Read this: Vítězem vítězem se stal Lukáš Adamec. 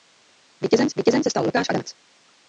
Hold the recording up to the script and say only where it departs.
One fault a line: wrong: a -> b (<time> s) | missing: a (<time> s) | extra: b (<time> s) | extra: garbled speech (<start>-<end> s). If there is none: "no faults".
no faults